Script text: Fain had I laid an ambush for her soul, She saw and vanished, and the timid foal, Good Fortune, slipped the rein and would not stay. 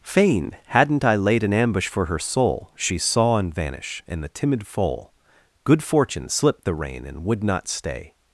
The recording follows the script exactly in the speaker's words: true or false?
false